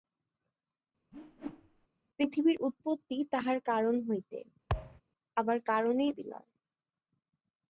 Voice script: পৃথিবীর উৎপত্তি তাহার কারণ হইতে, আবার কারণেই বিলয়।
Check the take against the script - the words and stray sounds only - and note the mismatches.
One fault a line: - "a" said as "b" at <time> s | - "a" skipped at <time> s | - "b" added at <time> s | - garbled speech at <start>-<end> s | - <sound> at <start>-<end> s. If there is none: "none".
- whoosh at 1.1-1.9 s
- thud at 4.7-5.0 s